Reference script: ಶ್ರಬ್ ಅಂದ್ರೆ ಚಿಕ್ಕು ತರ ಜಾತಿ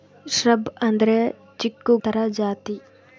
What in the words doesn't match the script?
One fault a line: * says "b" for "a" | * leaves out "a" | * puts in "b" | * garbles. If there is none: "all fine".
all fine